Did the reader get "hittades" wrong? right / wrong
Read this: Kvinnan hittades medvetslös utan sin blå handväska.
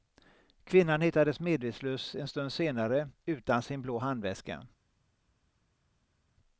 right